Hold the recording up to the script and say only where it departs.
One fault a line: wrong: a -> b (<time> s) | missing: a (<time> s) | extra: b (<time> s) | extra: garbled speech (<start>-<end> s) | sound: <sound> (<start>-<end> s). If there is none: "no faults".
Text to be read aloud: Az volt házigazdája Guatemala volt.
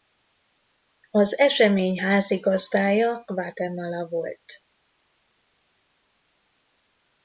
wrong: volt -> esemény (1.4 s)